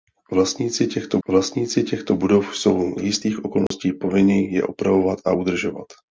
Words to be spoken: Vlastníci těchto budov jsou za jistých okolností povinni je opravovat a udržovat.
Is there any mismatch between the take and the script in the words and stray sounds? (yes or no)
yes